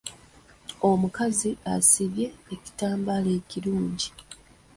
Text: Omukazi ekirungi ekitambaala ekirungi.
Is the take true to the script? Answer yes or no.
no